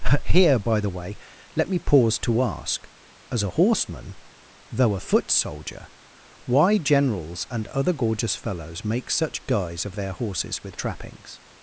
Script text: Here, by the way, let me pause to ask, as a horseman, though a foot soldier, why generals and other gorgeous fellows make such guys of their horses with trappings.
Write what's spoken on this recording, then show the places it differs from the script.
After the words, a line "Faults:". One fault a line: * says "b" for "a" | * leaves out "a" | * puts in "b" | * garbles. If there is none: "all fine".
Here, by the way, let me pause to ask, as a horseman, though a foot soldier, why generals and other gorgeous fellows make such guys of their horses with trappings.
Faults:
all fine